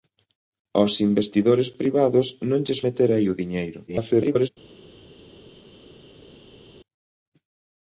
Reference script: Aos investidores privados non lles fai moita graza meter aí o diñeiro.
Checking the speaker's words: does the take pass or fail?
fail